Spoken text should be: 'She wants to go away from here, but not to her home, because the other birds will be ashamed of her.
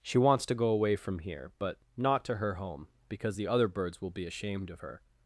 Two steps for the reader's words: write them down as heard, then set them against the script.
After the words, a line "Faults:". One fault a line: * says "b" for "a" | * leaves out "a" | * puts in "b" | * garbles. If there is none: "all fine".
'She wants to go away from here, but not to her home, because the other birds will be ashamed of her.
Faults:
all fine